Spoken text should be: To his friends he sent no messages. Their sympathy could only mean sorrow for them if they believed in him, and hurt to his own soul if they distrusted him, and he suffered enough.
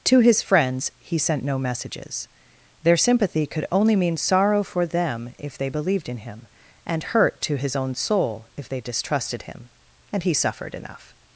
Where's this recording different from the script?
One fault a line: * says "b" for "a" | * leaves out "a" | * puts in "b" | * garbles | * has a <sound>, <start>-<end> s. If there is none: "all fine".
all fine